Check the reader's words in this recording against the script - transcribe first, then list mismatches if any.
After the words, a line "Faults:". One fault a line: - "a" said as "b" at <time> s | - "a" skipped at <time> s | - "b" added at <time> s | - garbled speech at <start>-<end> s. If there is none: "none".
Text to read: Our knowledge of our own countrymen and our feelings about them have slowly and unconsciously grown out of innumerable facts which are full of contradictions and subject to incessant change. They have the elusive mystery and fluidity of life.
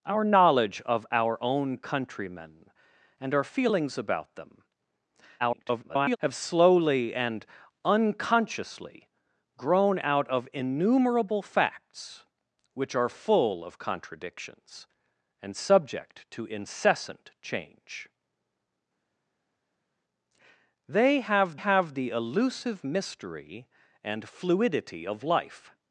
Our knowledge of our own countrymen and our feelings about them [garbled] have slowly and unconsciously grown out of innumerable facts which are full of contradictions and subject to incessant change. They have have the elusive mystery and fluidity of life.
Faults:
- garbled speech at 5.4-6.2 s
- "have" added at 21.5 s